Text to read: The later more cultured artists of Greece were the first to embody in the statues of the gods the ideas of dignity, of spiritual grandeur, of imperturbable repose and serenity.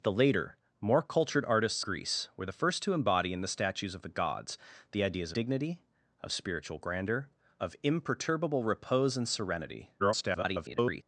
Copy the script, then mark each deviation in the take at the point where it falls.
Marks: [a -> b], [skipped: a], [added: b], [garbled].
The later more cultured artists [skipped: of] Greece were the first to embody in the statues of the gods the ideas [skipped: of] dignity, of spiritual grandeur, of imperturbable repose and serenity. [garbled]